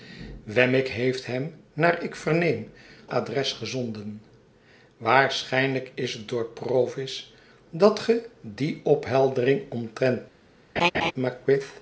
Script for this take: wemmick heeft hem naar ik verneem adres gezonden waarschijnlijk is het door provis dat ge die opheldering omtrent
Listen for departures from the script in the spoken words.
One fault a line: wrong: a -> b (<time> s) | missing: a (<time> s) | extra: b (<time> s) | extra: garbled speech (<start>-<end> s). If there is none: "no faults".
no faults